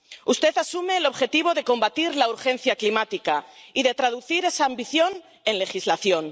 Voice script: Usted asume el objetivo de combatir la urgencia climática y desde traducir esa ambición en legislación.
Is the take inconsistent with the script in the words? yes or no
yes